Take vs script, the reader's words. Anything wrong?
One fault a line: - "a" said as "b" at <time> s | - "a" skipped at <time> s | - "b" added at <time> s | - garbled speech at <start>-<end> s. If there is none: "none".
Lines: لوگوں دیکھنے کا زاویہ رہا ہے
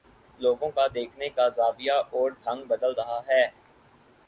- "کا" added at 0.7 s
- "اور ڈھنگ بدل" added at 2.1 s